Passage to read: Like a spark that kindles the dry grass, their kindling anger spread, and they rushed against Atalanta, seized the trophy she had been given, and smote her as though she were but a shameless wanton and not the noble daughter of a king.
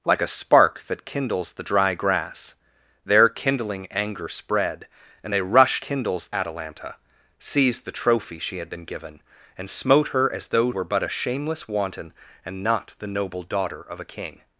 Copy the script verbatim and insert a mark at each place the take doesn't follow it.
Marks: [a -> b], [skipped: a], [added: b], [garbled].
Like a spark that kindles the dry grass, their kindling anger spread, and they rushed [against -> kindles] Atalanta, seized the trophy she had been given, and smote her as though [skipped: she] were but a shameless wanton and not the noble daughter of a king.